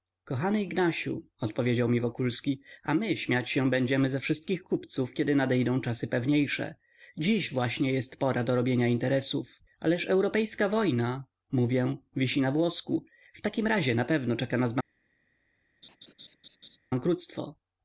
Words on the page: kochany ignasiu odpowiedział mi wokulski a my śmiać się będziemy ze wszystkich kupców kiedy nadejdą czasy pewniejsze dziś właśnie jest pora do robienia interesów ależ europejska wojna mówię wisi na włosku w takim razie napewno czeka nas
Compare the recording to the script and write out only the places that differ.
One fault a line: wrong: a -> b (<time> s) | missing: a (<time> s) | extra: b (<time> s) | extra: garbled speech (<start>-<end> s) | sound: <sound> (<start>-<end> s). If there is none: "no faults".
sound: laugh (15.8-16.8 s)